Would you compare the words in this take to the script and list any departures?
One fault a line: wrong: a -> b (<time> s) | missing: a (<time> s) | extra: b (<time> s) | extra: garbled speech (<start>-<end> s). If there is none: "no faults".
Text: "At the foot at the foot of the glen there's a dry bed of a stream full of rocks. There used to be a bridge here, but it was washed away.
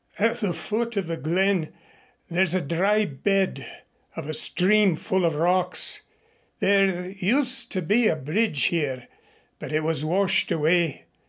missing: at the foot (1.0 s)